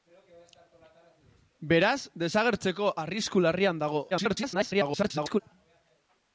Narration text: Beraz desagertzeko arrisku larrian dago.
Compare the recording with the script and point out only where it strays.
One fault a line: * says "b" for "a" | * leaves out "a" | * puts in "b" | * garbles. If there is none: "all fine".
* garbles